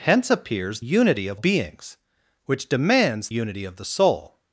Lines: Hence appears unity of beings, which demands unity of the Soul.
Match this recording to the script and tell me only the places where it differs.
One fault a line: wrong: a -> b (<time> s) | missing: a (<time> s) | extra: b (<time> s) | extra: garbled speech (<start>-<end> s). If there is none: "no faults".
no faults